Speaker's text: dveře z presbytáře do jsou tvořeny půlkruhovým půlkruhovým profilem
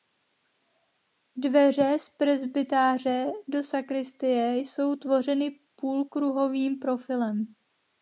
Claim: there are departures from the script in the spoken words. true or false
true